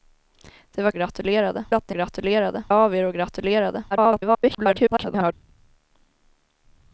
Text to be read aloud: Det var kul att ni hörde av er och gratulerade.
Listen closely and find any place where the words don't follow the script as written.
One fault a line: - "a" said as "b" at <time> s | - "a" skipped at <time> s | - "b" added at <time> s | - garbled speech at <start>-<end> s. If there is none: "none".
- "kul" said as "gratulerade" at 0.9 s
- "hörde" said as "gratulerade" at 1.9 s
- garbled speech at 3.9-5.3 s